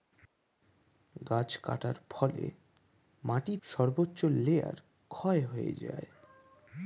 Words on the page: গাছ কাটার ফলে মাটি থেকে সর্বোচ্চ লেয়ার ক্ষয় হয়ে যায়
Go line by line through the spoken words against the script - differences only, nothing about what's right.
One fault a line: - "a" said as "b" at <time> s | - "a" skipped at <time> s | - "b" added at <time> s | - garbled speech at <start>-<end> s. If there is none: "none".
- "থেকে" skipped at 3.5 s